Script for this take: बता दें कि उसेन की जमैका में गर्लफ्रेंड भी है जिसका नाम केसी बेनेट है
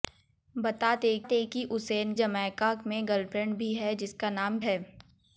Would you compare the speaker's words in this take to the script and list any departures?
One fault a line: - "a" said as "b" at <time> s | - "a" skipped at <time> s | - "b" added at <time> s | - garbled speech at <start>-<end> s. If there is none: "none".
- "दें" added at 1.2 s
- "की" skipped at 2.1 s
- "केसी बेनेट" skipped at 4.6 s